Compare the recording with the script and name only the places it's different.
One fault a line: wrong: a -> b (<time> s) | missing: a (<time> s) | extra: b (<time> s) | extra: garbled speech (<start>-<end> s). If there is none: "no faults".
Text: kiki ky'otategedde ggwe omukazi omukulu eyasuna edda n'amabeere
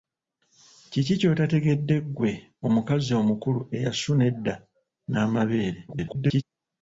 extra: garbled speech (5.9-6.4 s)